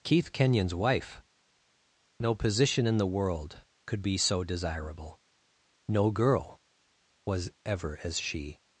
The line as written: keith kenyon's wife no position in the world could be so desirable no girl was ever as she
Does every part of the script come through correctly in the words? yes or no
yes